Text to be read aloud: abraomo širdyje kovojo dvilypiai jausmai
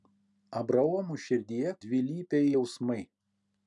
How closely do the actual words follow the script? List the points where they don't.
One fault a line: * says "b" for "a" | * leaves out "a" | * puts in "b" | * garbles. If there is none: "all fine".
* leaves out "kovojo"